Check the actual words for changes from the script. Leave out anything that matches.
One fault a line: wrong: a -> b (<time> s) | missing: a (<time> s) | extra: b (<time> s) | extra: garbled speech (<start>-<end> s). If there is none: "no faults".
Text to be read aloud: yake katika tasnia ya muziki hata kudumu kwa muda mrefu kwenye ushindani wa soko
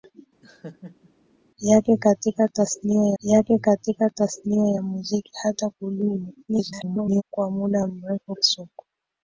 extra: yake katika tasnia (3.2 s)
extra: garbled speech (6.5-7.2 s)
missing: kwenye ushindani wa (8.4 s)